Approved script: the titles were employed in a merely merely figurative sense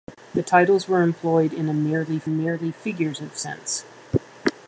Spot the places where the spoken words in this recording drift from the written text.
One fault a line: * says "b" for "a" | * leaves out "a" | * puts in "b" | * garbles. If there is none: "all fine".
all fine